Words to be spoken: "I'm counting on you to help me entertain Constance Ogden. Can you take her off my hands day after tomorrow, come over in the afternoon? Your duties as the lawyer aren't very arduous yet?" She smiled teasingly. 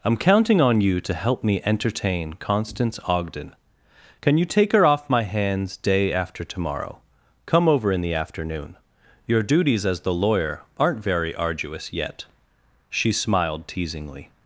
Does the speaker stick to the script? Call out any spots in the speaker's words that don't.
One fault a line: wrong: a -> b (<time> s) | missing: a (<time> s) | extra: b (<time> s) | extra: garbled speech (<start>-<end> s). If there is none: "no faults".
no faults